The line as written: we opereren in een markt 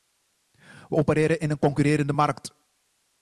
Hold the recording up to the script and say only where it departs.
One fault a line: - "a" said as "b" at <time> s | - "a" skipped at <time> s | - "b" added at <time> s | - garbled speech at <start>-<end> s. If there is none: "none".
- "concurrerende" added at 1.6 s